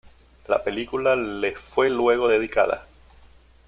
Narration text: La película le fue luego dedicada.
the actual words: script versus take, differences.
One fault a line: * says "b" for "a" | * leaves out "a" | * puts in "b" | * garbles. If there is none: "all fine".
all fine